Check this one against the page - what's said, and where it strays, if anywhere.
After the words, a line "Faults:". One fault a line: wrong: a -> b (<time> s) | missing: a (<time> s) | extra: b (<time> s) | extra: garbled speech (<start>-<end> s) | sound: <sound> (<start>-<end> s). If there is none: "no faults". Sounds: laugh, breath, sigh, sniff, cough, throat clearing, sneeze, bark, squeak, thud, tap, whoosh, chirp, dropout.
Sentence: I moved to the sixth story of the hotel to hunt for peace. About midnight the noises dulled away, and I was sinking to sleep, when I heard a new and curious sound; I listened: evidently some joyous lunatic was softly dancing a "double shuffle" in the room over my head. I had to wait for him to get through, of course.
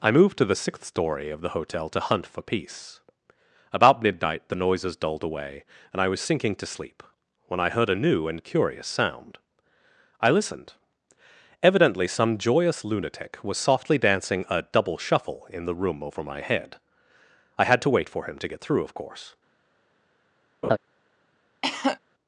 I moved to the sixth story of the hotel to hunt for peace. About midnight the noises dulled away, and I was sinking to sleep, when I heard a new and curious sound; I listened: evidently some joyous lunatic was softly dancing a "double shuffle" in the room over my head. I had to wait for him to get through, of course.
Faults:
sound: laugh (20.6-20.8 s)
sound: cough (21.6-22.0 s)